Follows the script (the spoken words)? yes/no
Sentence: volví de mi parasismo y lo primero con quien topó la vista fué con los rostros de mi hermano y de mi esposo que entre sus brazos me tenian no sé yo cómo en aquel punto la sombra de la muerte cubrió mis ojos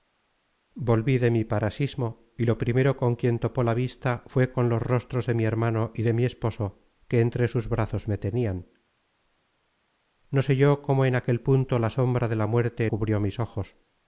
yes